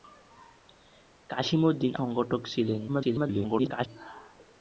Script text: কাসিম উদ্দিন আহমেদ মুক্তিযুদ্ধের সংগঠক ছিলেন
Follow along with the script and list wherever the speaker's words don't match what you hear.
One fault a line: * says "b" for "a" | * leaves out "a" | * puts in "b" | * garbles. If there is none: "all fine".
* leaves out "আহমেদ মুক্তিযুদ্ধের"
* garbles